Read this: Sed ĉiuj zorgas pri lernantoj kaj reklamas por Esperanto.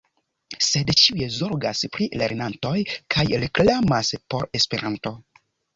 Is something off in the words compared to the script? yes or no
no